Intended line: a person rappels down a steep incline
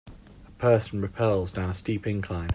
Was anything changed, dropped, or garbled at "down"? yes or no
no